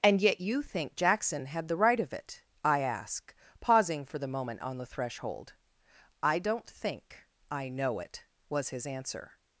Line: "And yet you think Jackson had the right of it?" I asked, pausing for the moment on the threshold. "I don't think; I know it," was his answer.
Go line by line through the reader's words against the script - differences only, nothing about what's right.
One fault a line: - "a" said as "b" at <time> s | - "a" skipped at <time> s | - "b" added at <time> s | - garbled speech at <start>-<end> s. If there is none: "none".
- "asked" said as "ask" at 2.8 s